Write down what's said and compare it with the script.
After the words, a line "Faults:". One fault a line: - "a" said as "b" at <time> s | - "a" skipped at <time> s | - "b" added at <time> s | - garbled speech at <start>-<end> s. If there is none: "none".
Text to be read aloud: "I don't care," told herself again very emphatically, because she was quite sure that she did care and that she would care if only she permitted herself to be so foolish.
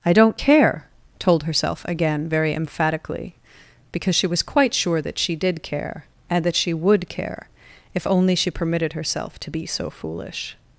"I don't care," told herself again very emphatically, because she was quite sure that she did care and that she would care if only she permitted herself to be so foolish.
Faults:
none